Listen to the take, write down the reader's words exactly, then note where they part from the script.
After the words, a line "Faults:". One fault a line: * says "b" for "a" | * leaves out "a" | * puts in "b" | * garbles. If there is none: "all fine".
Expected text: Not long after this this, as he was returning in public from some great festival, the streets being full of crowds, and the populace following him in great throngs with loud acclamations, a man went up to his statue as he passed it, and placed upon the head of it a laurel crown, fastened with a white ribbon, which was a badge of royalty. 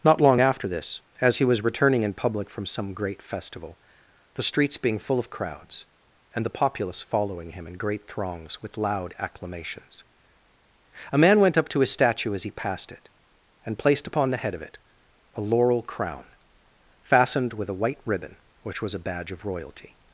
Not long after this, as he was returning in public from some great festival, the streets being full of crowds, and the populace following him in great throngs with loud acclamations, a man went up to his statue as he passed it, and placed upon the head of it a laurel crown, fastened with a white ribbon, which was a badge of royalty.
Faults:
* leaves out "this"